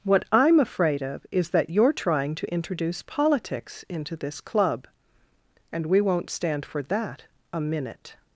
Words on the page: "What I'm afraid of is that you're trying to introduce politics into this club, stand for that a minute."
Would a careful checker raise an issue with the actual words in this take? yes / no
yes